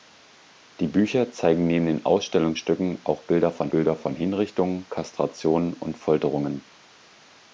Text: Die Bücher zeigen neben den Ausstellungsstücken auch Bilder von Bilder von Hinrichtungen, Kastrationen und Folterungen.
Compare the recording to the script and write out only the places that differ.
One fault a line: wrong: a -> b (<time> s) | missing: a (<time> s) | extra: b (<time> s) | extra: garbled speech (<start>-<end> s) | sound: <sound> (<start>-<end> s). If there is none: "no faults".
no faults